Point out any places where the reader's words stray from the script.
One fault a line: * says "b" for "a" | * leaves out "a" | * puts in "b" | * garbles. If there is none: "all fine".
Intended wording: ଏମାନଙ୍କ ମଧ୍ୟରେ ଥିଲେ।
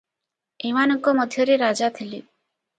* puts in "ରାଜା"